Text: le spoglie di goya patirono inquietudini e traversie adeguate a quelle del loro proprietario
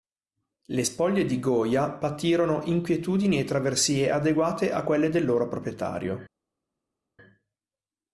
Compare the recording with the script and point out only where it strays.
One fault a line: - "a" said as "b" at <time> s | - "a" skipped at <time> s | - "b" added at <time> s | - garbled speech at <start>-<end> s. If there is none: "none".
none